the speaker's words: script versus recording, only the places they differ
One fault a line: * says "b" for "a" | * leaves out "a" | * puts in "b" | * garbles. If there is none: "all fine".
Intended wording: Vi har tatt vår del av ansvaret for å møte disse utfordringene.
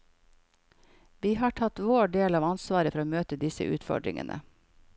all fine